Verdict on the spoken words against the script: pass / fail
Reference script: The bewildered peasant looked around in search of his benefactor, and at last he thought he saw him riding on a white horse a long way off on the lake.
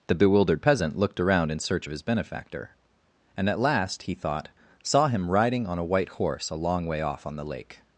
fail